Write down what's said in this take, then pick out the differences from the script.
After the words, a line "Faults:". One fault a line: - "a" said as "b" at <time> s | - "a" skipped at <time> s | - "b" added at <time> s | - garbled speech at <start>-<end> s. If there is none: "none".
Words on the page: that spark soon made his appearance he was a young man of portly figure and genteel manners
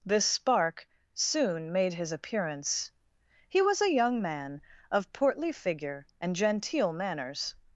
this spark soon made his appearance he was a young man of portly figure and genteel manners
Faults:
- "that" said as "this" at 0.0 s